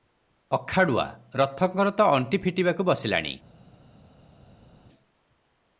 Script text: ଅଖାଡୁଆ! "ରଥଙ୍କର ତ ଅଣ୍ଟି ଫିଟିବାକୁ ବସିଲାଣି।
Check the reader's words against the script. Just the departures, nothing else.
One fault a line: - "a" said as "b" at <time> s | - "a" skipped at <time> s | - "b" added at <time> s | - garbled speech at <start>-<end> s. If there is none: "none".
none